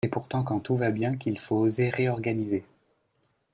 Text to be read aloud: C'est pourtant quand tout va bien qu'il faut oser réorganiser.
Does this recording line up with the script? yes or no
yes